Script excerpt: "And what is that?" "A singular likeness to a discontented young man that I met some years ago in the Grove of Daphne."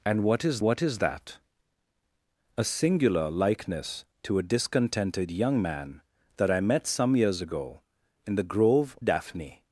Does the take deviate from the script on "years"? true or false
false